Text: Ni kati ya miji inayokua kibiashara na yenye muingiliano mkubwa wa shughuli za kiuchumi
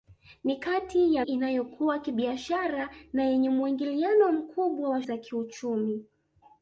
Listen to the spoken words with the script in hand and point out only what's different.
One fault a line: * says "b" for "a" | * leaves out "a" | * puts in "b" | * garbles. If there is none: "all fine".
* leaves out "miji"
* leaves out "shughuli"